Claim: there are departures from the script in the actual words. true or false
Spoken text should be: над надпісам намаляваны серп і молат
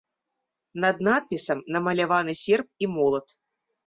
false